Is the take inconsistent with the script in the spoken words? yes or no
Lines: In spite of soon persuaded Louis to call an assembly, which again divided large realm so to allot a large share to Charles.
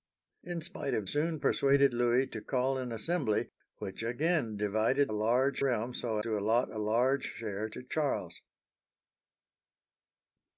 no